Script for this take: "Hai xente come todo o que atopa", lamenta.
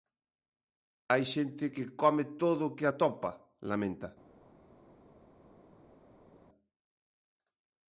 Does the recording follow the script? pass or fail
fail